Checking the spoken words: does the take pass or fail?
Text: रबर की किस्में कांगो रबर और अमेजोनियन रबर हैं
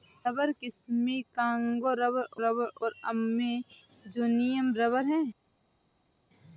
fail